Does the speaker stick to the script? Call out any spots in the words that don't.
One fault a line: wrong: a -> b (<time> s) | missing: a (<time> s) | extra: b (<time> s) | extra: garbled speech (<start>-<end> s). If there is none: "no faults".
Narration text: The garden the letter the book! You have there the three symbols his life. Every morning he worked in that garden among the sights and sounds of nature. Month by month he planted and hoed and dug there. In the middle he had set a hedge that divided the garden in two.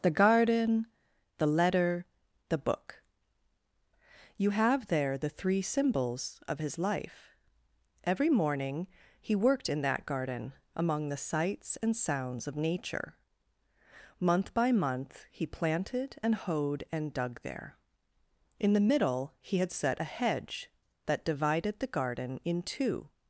extra: of (6.5 s)